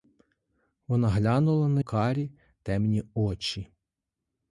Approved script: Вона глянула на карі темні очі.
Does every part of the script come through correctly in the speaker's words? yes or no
yes